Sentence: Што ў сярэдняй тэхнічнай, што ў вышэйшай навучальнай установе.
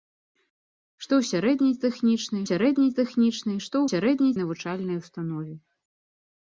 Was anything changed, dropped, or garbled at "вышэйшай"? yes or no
yes